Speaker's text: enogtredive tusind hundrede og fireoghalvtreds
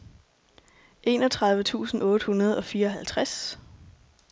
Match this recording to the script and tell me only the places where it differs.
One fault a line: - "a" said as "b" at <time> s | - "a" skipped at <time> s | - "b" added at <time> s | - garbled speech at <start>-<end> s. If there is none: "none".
- "otte" added at 2.0 s